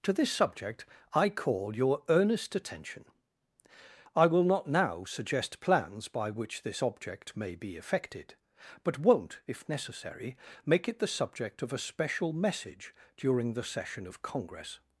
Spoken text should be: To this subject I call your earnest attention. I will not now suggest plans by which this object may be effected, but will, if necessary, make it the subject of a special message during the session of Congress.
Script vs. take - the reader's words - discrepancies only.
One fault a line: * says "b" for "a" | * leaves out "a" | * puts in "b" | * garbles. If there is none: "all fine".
* says "won't" for "will"